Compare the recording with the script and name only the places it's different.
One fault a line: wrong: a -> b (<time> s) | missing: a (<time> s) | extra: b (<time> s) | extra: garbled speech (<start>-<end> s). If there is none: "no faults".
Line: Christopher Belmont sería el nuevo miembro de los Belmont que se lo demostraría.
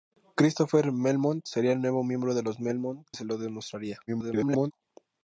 missing: que (3.0 s)
extra: garbled speech (4.1-4.7 s)